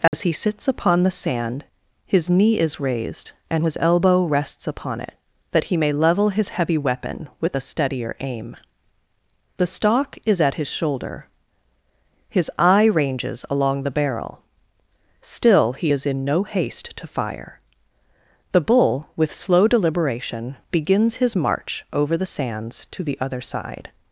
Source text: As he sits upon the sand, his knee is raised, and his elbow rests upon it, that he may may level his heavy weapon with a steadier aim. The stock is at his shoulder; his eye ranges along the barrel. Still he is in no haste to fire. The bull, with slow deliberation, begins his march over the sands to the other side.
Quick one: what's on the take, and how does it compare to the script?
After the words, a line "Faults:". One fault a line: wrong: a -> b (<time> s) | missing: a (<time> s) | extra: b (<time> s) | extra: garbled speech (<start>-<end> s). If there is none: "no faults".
As he sits upon the sand, his knee is raised, and his elbow rests upon it, that he may level his heavy weapon with a steadier aim. The stock is at his shoulder; his eye ranges along the barrel. Still he is in no haste to fire. The bull, with slow deliberation, begins his march over the sands to the other side.
Faults:
missing: may (5.9 s)